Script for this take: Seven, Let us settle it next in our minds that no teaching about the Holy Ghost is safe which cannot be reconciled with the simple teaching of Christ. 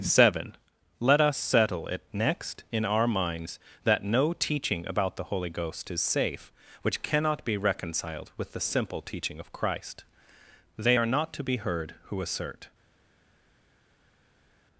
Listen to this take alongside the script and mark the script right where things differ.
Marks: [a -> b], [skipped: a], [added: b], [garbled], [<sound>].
Seven, Let us settle it next in our minds that no teaching about the Holy Ghost is safe which cannot be reconciled with the simple teaching of Christ. [added: They are not to be heard who assert]